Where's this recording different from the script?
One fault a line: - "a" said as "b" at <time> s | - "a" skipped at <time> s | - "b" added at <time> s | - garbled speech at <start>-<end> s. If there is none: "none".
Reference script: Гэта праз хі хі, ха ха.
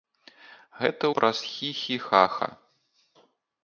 none